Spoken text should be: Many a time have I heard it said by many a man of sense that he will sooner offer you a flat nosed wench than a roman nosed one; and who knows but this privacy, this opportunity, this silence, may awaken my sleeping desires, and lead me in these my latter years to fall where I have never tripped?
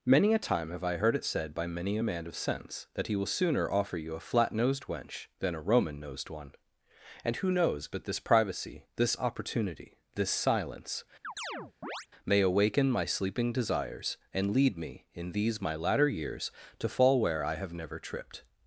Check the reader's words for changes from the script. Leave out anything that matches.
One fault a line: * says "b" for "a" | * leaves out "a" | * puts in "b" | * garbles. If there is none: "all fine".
all fine